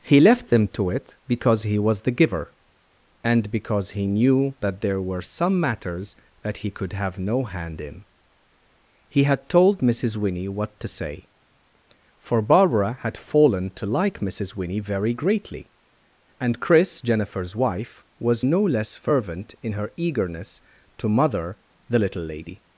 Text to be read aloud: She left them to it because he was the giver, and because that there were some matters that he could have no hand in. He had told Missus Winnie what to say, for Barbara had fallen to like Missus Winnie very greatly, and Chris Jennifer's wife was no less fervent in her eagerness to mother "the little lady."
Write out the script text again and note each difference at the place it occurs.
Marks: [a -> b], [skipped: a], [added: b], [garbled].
[She -> He] left them to it because he was the giver, and because [added: he knew] that there were some matters that he could have no hand in. He had told Missus Winnie what to say, for Barbara had fallen to like Missus Winnie very greatly, and Chris Jennifer's wife was no less fervent in her eagerness to mother "the little lady."